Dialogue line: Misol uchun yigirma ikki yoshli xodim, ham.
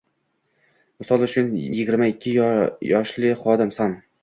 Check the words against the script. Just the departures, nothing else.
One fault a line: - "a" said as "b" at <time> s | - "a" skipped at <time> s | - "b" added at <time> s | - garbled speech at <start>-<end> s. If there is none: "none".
none